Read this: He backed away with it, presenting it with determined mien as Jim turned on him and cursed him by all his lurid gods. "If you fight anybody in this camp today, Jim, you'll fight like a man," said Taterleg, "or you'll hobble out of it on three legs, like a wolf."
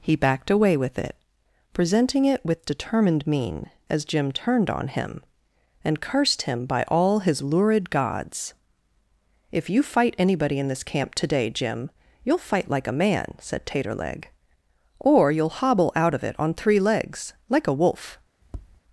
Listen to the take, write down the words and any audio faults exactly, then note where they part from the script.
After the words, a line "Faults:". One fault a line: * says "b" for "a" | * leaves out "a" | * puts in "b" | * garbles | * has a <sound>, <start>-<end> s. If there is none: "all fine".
He backed away with it, presenting it with determined mien as Jim turned on him and cursed him by all his lurid gods. "If you fight anybody in this camp today, Jim, you'll fight like a man," said Taterleg, "or you'll hobble out of it on three legs, like a wolf."
Faults:
* has a tap, 18.4-18.8 s